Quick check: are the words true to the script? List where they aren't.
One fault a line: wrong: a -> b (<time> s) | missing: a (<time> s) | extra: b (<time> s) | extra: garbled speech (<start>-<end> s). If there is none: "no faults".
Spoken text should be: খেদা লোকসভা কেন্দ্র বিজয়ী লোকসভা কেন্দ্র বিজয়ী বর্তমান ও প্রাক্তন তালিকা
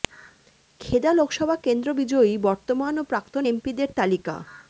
missing: লোকসভা কেন্দ্র বিজয়ী (2.3 s)
extra: এমপিদের (3.4 s)